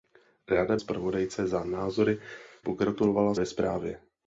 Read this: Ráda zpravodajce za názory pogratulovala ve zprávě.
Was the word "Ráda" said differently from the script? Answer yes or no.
no